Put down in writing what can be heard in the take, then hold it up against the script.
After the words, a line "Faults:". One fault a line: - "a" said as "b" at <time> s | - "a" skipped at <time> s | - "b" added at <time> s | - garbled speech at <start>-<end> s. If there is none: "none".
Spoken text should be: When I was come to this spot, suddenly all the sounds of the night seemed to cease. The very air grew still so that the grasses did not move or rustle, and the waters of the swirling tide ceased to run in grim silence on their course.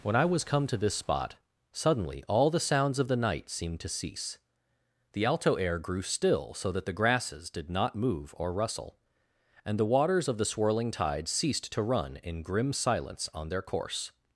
When I was come to this spot, suddenly all the sounds of the night seemed to cease. The alto air grew still so that the grasses did not move or rustle, and the waters of the swirling tide ceased to run in grim silence on their course.
Faults:
- "very" said as "alto" at 5.2 s